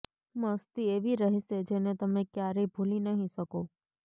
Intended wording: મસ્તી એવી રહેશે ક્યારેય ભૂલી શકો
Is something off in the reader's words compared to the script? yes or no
yes